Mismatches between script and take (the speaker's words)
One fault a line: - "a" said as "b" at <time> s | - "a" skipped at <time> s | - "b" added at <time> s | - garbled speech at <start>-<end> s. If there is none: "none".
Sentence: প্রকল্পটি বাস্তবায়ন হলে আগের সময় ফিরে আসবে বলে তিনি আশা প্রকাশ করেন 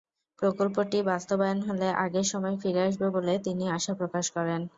none